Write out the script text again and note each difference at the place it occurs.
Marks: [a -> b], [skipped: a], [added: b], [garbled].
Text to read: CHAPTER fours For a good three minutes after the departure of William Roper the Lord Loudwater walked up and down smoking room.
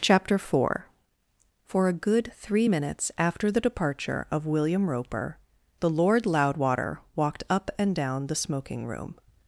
CHAPTER [fours -> four] For a good three minutes after the departure of William Roper the Lord Loudwater walked up and down [added: the] smoking room.